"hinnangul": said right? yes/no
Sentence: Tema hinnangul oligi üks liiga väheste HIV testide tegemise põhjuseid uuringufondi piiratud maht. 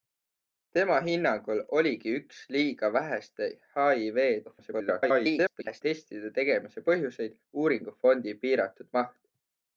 yes